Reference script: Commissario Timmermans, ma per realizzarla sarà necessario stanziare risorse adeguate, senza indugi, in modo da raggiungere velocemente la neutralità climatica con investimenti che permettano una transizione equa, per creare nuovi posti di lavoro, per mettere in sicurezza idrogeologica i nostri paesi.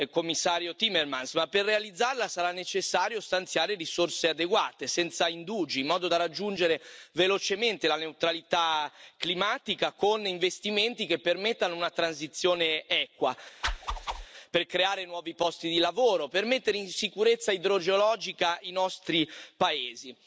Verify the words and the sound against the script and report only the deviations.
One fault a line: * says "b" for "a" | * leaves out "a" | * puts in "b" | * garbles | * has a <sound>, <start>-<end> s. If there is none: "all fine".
* has a whoosh, 13.6-14.3 s